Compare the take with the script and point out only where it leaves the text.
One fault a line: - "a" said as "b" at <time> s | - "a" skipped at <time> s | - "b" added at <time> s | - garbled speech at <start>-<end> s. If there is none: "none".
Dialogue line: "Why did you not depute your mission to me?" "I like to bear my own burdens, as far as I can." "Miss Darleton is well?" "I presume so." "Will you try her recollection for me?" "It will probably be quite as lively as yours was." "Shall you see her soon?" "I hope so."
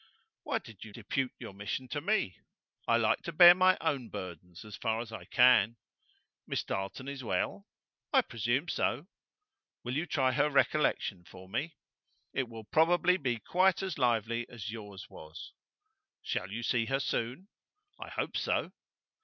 - "not" skipped at 0.9 s